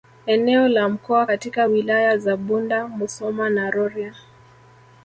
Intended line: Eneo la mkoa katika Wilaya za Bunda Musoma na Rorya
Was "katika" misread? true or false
false